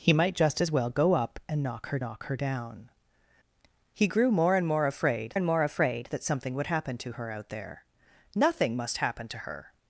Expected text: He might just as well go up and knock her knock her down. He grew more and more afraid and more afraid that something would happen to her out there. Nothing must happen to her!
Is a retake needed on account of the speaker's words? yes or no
no